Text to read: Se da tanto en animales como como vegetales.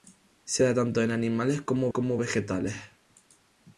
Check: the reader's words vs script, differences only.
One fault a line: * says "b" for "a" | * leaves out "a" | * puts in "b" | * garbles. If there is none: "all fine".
all fine